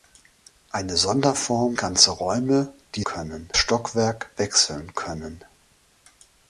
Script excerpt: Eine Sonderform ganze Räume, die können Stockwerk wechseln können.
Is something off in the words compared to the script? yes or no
no